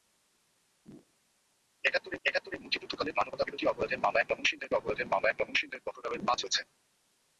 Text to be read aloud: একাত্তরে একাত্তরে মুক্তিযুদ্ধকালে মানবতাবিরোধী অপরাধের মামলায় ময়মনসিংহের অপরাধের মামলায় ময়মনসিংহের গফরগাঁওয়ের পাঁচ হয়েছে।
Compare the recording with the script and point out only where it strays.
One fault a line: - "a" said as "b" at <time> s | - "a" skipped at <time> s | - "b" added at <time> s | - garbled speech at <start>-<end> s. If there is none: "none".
none